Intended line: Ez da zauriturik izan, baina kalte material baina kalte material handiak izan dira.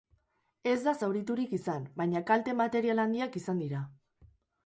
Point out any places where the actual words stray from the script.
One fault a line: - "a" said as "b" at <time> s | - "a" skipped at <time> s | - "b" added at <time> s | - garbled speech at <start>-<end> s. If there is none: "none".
- "baina kalte material" skipped at 3.0 s